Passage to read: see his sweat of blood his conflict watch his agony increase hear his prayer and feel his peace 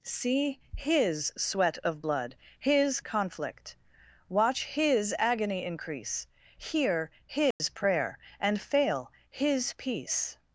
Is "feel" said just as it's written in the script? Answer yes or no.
no